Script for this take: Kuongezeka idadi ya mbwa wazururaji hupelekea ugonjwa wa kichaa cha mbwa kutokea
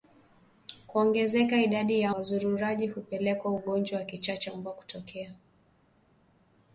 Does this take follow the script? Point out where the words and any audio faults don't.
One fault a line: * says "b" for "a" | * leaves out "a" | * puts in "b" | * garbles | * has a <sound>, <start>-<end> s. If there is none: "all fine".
* leaves out "mbwa"